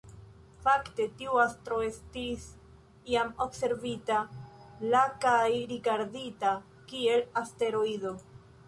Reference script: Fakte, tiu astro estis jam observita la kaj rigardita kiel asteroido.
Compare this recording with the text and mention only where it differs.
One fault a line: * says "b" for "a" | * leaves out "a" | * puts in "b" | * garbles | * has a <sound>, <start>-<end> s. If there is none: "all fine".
all fine